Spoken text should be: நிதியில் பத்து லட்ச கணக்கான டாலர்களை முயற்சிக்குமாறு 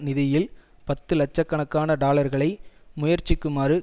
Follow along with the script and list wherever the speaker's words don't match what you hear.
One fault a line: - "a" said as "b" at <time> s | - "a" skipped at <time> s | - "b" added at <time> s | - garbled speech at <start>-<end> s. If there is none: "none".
none